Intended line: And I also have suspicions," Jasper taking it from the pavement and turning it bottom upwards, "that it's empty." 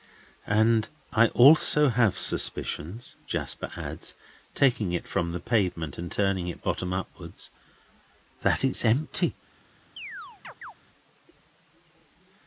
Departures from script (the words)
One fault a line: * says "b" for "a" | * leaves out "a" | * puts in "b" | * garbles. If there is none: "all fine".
* puts in "adds"